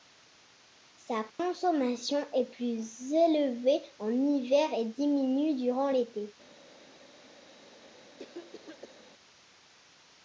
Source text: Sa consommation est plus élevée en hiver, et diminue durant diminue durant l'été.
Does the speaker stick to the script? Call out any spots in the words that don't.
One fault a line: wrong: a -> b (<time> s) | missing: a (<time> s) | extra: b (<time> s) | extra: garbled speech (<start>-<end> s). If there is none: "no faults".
missing: diminue durant (5.9 s)